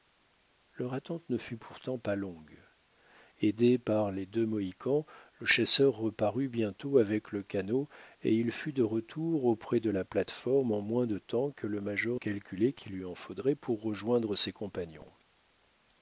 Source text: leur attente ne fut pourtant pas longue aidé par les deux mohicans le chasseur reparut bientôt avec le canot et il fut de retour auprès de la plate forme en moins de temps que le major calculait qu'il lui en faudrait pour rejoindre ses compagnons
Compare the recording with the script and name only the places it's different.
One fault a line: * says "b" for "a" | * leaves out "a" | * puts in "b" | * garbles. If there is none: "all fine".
all fine